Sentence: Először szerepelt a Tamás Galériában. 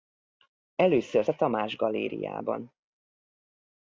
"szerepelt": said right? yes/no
no